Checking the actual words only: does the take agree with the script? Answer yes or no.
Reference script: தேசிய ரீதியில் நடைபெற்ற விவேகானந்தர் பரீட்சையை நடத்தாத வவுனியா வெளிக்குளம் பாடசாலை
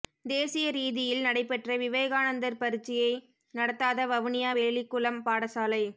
yes